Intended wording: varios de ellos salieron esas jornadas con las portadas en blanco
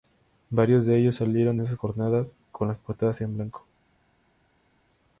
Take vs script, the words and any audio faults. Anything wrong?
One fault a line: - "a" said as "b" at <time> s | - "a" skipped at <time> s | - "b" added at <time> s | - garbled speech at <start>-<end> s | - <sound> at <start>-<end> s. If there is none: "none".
none